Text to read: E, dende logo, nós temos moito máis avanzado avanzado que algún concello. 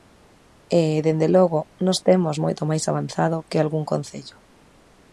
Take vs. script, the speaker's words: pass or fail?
fail